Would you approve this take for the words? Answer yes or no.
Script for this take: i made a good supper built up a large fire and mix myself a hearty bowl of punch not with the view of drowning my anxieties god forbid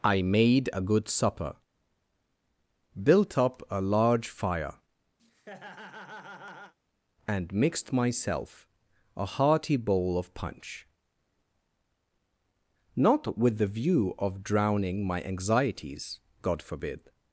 no